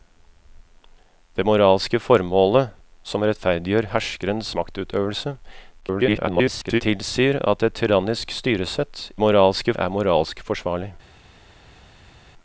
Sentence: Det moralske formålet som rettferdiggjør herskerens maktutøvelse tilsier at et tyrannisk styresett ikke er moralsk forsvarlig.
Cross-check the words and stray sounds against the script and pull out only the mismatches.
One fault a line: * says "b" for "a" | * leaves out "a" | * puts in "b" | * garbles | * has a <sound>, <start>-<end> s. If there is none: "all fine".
* garbles
* says "moralske" for "ikke"